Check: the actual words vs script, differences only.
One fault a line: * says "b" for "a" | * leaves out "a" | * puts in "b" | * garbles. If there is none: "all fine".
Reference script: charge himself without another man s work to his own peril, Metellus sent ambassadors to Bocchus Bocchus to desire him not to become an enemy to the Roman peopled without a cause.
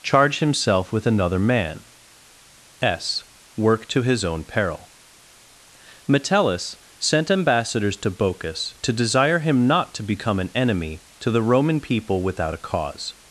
* says "with" for "without"
* leaves out "Bocchus"
* says "people" for "peopled"